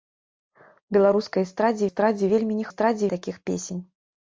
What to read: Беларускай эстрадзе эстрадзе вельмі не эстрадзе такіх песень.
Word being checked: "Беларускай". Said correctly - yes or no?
yes